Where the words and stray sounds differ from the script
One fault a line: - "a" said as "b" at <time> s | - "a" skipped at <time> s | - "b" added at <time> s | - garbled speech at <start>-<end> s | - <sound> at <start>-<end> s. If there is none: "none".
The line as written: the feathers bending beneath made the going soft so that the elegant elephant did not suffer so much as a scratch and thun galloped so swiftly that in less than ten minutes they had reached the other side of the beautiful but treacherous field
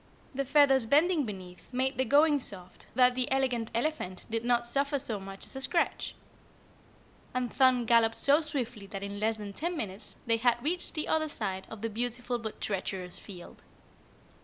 - "so" skipped at 2.9 s